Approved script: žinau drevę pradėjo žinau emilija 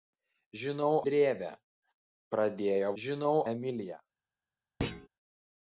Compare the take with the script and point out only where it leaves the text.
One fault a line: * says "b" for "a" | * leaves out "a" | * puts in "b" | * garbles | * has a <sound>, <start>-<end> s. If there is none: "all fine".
* has a thud, 4.8-5.1 s